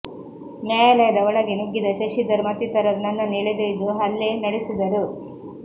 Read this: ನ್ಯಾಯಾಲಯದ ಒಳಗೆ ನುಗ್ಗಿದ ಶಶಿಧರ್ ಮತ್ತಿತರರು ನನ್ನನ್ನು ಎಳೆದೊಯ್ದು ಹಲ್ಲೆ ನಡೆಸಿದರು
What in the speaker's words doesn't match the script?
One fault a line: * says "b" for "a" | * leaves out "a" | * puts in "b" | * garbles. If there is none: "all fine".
all fine